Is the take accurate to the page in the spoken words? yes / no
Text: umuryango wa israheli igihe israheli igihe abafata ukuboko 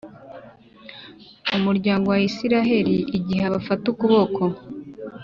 no